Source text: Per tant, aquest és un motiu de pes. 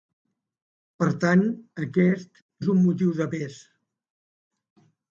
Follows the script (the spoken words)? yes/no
yes